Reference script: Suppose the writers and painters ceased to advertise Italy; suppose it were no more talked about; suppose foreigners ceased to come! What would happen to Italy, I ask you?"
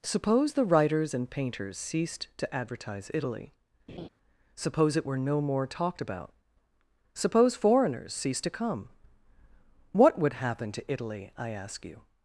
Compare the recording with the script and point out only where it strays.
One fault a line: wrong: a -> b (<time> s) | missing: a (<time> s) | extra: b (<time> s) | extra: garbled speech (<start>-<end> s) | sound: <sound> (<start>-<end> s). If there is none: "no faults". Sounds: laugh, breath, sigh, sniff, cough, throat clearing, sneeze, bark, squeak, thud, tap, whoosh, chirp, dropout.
sound: laugh (3.9-4.1 s)